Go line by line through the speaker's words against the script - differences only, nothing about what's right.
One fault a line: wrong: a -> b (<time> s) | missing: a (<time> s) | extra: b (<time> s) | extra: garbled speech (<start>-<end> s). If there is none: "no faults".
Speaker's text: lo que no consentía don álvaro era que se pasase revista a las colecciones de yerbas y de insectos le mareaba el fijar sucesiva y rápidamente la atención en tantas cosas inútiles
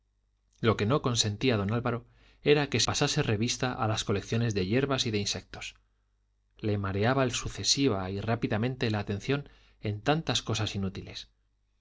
missing: se (2.8 s)
missing: fijar (7.3 s)